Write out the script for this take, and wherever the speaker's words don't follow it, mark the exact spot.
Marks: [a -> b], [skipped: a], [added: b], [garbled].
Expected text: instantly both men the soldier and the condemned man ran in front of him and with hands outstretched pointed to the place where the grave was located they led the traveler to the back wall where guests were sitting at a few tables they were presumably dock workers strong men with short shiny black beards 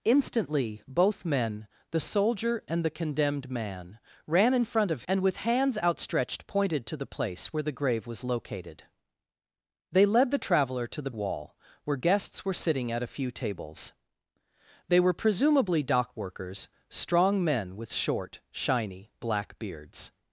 instantly both men the soldier and the condemned man ran in front of [skipped: him] and with hands outstretched pointed to the place where the grave was located they led the traveler to the [skipped: back] wall where guests were sitting at a few tables they were presumably dock workers strong men with short shiny black beards